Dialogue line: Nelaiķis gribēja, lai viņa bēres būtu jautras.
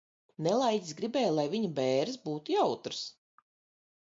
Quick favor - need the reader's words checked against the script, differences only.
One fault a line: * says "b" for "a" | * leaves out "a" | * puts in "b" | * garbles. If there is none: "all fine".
all fine